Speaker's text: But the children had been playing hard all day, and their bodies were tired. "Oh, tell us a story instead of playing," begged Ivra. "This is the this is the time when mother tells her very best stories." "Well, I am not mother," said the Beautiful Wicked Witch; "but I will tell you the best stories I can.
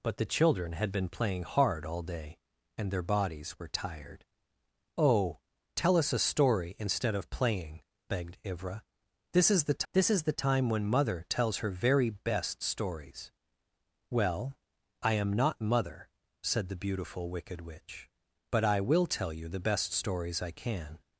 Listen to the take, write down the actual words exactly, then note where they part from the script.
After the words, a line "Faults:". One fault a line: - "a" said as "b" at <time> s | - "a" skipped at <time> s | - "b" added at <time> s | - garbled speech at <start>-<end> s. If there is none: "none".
But the children had been playing hard all day, and their bodies were tired. "Oh, tell us a story instead of playing," begged Ivra. "This is the this is the time when mother tells her very best stories." "Well, I am not mother," said the Beautiful Wicked Witch; "but I will tell you the best stories I can.
Faults:
none